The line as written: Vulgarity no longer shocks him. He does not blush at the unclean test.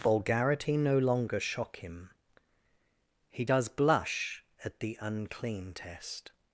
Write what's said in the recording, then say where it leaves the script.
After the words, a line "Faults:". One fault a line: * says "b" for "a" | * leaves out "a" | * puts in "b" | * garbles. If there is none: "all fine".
Vulgarity no longer shock him. He does blush at the unclean test.
Faults:
* says "shock" for "shocks"
* leaves out "not"